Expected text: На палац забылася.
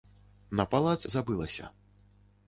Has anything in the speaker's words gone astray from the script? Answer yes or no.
no